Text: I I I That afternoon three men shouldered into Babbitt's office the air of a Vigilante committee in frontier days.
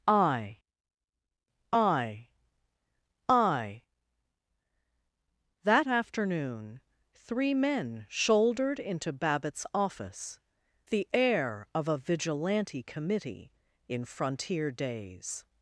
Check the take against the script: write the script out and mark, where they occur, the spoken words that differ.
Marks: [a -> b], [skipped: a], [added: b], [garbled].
I I I That afternoon three men shouldered into Babbitt's office the air of a Vigilante committee in frontier days.